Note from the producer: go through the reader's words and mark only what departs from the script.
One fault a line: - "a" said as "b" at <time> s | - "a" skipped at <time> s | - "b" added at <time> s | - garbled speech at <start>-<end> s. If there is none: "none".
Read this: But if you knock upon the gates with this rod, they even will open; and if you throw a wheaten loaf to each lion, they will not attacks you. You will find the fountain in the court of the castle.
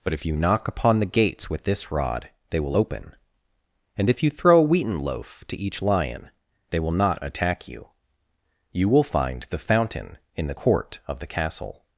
- "even" skipped at 2.6 s
- "attacks" said as "attack" at 7.2 s